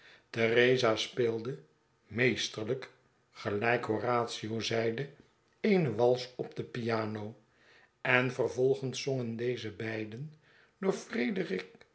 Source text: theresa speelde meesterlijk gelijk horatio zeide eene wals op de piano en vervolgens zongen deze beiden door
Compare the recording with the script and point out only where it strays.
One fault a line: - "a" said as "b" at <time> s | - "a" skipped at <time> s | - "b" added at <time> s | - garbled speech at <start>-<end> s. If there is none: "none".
none